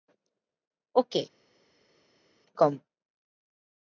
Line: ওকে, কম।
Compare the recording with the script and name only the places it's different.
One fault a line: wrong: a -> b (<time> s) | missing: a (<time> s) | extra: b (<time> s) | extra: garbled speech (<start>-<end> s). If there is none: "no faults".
no faults